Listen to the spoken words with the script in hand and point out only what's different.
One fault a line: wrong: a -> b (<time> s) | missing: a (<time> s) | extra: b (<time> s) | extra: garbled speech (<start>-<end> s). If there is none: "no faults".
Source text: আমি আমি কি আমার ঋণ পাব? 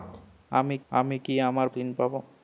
no faults